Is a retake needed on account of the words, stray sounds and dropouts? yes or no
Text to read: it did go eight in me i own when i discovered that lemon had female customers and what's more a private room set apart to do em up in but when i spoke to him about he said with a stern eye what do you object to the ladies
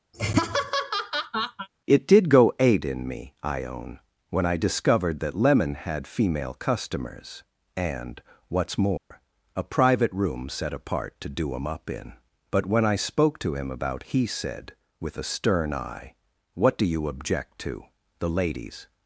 yes